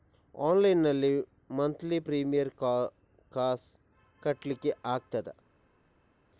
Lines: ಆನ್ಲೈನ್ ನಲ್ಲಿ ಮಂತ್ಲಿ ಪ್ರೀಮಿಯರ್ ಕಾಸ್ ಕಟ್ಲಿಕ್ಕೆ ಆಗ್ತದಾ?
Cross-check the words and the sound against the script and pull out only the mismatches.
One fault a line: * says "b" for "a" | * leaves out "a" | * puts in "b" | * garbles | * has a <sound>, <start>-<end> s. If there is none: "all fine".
all fine